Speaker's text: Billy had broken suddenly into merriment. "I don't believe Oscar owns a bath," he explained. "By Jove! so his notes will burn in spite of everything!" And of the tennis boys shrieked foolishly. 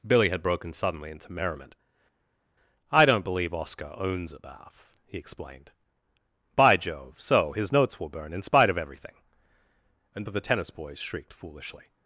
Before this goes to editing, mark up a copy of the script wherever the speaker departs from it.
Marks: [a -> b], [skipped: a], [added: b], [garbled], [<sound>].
Billy had broken suddenly into merriment. "I don't believe Oscar owns a bath," he explained. "By Jove! so his notes will burn in spite of everything!" And of the tennis boys shrieked foolishly.